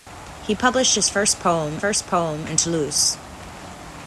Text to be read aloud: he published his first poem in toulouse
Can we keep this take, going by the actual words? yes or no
no